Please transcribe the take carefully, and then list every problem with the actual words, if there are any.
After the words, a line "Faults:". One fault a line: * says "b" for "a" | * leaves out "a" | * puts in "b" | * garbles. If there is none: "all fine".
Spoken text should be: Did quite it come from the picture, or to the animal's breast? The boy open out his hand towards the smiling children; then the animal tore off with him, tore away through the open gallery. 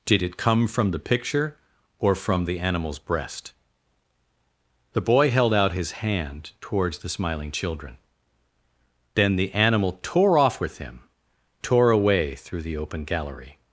Did it come from the picture, or from the animal's breast? The boy held out his hand towards the smiling children; then the animal tore off with him, tore away through the open gallery.
Faults:
* leaves out "quite"
* says "from" for "to"
* says "held" for "open"